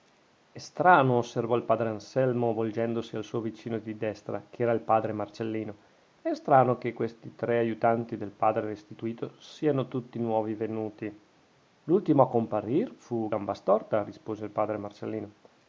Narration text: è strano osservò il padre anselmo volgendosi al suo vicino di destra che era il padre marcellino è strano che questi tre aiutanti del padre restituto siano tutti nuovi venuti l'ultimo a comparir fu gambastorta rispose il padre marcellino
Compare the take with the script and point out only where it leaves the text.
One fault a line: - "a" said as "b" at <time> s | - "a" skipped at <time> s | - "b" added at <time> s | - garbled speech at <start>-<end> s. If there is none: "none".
none